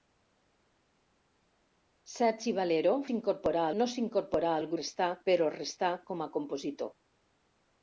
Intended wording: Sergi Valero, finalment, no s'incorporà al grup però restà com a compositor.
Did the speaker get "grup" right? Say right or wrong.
wrong